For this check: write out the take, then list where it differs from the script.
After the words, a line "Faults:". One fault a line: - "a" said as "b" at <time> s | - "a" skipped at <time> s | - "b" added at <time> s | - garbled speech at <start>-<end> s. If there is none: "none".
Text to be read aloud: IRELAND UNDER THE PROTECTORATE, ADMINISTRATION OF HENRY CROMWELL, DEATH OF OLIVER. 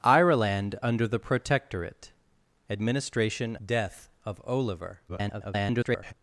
IRELAND UNDER THE PROTECTORATE, ADMINISTRATION DEATH OF OLIVER. [garbled]
Faults:
- "OF HENRY CROMWELL" skipped at 3.5 s
- garbled speech at 5.1-6.1 s